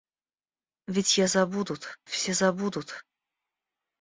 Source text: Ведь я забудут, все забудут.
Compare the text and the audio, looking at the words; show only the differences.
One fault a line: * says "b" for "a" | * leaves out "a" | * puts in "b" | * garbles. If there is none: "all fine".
all fine